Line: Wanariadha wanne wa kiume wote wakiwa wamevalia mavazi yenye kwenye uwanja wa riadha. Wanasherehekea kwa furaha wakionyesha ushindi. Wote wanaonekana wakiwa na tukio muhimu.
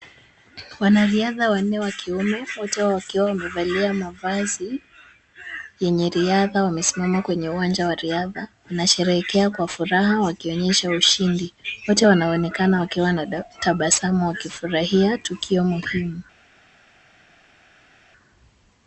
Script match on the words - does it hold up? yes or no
no